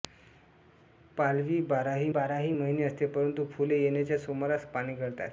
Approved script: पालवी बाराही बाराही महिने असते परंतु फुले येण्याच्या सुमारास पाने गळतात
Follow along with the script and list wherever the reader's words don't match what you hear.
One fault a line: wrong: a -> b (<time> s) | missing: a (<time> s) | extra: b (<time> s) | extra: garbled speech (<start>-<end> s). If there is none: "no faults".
no faults